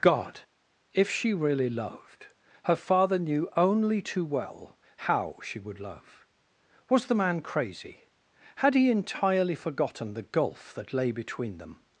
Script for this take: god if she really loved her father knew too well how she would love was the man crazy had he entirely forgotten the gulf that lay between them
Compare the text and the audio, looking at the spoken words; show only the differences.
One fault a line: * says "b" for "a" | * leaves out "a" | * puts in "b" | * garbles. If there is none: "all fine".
* puts in "only"